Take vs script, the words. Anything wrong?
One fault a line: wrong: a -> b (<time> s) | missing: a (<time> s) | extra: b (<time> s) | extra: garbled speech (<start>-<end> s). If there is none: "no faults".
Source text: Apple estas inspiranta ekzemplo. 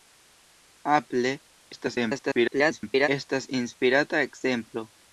extra: garbled speech (1.7-3.1 s)